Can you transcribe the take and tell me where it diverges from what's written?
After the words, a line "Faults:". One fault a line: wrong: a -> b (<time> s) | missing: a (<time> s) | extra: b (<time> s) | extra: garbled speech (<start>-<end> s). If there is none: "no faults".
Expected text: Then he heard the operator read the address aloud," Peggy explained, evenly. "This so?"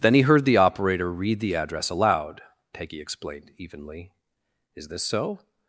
Then he heard the operator read the address aloud," Peggy explained, evenly. "Is this so?"
Faults:
extra: Is (4.7 s)